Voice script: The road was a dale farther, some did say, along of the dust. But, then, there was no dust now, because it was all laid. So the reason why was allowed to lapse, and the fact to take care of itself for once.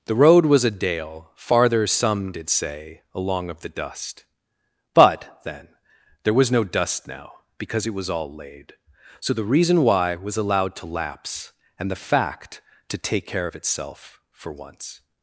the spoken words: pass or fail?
pass